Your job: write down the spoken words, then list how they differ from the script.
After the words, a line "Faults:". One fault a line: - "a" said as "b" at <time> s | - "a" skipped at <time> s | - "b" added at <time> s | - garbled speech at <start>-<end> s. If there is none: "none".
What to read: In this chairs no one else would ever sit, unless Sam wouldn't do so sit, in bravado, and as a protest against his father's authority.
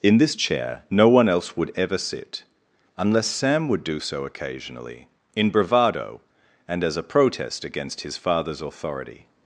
In this chair no one else would ever sit, unless Sam would do so occasionally, in bravado, and as a protest against his father's authority.
Faults:
- "chairs" said as "chair" at 0.3 s
- "wouldn't" said as "would" at 3.7 s
- "sit" said as "occasionally" at 4.2 s